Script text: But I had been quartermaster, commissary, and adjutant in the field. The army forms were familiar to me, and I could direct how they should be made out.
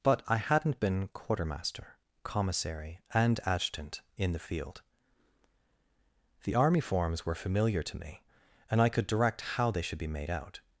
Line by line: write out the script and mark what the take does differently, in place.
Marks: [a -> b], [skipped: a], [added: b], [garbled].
But I [had -> hadn't] been quartermaster, commissary, and adjutant in the field. The army forms were familiar to me, and I could direct how they should be made out.